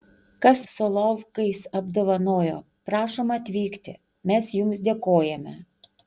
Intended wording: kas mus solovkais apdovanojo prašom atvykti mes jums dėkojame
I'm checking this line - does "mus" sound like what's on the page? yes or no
no